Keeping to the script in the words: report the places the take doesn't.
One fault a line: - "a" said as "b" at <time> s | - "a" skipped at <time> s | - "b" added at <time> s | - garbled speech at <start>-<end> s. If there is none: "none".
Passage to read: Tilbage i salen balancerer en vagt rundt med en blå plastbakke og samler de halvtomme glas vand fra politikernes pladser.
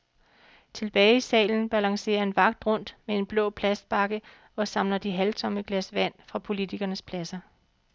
none